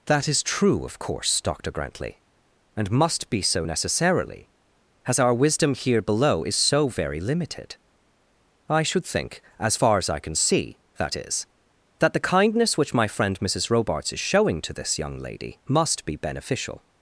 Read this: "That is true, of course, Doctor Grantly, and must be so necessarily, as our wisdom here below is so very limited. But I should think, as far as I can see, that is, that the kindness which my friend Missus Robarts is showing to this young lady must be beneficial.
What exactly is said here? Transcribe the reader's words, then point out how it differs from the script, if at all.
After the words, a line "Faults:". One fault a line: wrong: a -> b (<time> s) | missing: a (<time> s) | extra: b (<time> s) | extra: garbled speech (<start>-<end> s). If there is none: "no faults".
"That is true, of course, Doctor Grantly, and must be so necessarily, as our wisdom here below is so very limited. I should think, as far as I can see, that is, that the kindness which my friend Missus Robarts is showing to this young lady must be beneficial.
Faults:
missing: But (7.8 s)